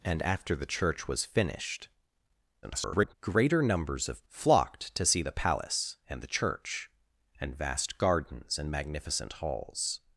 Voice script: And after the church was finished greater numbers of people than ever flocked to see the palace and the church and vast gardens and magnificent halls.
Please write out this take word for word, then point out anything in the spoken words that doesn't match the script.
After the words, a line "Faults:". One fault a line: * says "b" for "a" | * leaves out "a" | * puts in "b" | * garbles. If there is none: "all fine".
And after the church was finished [garbled] greater numbers of flocked to see the palace and the church and vast gardens and magnificent halls.
Faults:
* garbles
* leaves out "people than ever"